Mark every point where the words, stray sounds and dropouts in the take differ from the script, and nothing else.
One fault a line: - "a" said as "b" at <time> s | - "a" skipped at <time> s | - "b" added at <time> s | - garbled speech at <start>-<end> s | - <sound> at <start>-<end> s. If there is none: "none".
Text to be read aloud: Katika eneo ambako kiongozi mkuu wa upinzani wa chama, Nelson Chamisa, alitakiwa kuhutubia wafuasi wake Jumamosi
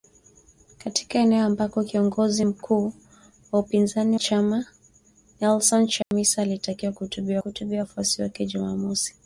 - "wa" skipped at 4.2 s
- dropout at 6.0-6.1 s
- "kuhutubia" added at 7.4 s